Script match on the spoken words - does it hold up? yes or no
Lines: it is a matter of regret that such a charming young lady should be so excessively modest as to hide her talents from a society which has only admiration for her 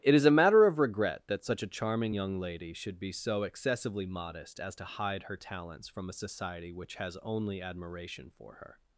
yes